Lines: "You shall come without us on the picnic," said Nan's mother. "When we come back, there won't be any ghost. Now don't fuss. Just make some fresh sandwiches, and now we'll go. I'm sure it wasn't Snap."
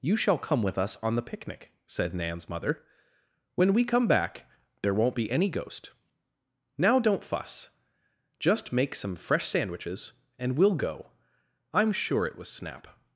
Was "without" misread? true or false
true